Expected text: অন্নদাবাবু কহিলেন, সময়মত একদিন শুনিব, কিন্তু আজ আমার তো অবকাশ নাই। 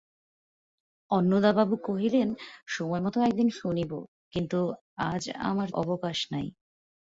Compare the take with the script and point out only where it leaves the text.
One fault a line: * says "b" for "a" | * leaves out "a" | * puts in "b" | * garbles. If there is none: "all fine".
* leaves out "তো"